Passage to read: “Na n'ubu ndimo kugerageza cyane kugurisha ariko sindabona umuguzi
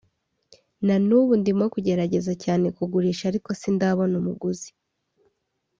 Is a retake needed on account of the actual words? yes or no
no